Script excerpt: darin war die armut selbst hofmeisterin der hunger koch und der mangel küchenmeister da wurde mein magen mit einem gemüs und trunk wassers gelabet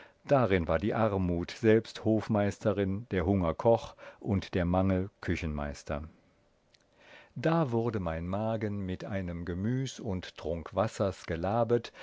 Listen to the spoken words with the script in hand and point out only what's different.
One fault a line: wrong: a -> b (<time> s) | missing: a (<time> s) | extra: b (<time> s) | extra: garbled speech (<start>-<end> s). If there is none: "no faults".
no faults